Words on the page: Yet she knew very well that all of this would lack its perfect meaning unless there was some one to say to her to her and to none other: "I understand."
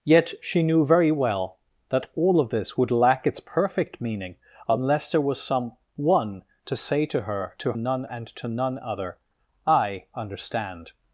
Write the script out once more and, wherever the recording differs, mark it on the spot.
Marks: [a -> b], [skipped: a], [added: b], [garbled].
Yet she knew very well that all of this would lack its perfect meaning unless there was some one to say to her to [her -> none] and to none other: "I understand."